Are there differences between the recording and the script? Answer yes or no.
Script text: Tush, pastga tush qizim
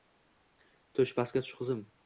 no